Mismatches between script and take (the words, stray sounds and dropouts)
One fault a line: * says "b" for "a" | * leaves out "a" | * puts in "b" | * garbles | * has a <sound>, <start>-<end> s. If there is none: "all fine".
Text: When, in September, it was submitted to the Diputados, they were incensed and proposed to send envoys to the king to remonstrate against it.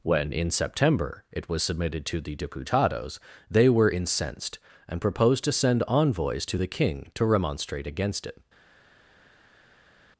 all fine